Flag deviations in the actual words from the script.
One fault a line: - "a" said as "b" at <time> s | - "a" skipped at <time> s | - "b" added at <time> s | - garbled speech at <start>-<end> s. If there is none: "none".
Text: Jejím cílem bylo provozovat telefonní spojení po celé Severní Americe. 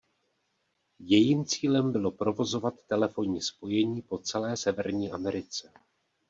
none